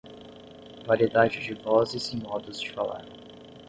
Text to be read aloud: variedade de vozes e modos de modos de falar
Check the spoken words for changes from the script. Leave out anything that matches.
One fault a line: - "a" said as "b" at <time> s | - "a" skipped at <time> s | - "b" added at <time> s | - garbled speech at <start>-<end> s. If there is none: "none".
- "modos de" skipped at 2.7 s